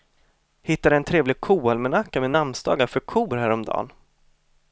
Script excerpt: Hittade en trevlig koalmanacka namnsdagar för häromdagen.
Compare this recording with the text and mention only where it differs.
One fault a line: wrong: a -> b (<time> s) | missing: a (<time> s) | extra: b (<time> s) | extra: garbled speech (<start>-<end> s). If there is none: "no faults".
extra: med (2.2 s)
extra: kor (3.0 s)